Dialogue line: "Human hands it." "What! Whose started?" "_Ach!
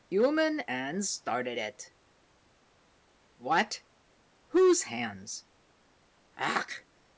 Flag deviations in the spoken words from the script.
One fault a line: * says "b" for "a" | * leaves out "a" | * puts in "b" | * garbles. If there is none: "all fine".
* puts in "started"
* says "hands" for "started"